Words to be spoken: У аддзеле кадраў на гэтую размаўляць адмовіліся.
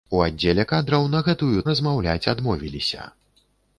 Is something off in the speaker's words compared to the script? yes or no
no